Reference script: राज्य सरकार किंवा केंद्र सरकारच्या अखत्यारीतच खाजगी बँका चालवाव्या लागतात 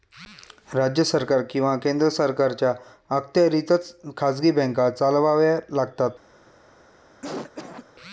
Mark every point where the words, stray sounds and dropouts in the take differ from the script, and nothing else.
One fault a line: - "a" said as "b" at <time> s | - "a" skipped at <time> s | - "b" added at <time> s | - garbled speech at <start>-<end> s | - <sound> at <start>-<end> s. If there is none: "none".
- cough at 7.2-7.9 s